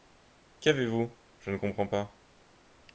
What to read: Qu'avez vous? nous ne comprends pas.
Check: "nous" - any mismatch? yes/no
yes